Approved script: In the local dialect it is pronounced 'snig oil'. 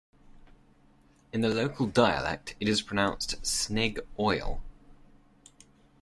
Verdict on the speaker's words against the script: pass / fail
pass